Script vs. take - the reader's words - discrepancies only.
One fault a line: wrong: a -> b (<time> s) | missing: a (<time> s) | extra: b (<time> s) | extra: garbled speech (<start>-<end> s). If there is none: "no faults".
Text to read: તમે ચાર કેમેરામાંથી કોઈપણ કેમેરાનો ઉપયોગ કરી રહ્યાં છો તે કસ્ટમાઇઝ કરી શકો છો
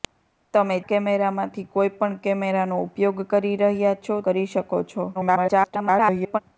missing: ચાર (0.8 s)
missing: તે કસ્ટમાઇઝ (4.2 s)
extra: garbled speech (5.1-6.4 s)